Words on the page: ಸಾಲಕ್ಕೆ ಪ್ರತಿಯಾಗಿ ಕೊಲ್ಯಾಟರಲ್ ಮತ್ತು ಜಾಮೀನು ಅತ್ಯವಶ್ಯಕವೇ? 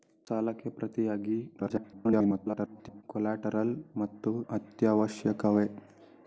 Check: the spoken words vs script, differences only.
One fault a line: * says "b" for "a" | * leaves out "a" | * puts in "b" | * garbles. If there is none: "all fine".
* garbles
* leaves out "ಜಾಮೀನು"